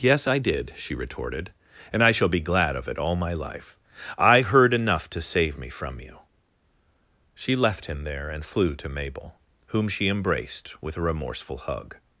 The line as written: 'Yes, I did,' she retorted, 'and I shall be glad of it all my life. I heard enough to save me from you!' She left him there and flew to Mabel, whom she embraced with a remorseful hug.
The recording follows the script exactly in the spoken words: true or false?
true